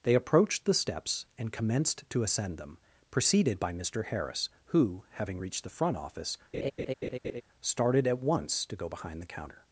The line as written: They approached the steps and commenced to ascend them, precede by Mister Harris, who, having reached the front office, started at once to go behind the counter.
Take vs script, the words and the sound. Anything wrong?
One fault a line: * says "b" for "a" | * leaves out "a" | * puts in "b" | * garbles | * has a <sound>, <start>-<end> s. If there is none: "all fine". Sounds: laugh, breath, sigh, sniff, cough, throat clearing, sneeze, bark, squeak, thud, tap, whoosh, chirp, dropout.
* says "preceded" for "precede"
* has a laugh, 6.5-7.4 s